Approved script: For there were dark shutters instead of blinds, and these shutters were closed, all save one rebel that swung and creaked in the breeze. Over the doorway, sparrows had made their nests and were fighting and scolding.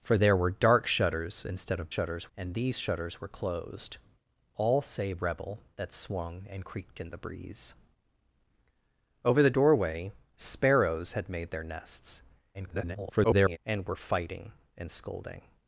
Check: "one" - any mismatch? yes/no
yes